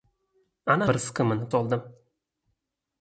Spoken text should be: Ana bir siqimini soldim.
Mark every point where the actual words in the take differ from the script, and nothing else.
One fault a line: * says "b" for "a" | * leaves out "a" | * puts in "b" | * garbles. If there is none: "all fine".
all fine